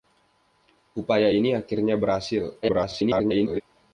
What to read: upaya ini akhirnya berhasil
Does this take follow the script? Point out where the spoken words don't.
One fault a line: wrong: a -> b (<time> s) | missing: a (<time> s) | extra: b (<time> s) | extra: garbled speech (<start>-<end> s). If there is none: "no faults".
extra: garbled speech (2.6-3.6 s)